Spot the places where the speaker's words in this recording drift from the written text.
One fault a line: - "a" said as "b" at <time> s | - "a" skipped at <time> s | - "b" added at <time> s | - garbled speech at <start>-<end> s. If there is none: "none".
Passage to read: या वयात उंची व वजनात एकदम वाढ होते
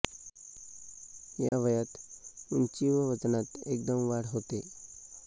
none